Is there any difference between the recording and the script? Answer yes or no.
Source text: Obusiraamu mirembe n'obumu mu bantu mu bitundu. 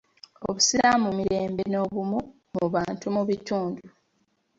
no